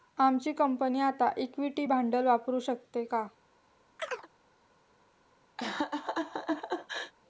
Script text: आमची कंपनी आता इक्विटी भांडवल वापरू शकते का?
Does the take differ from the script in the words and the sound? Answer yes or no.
yes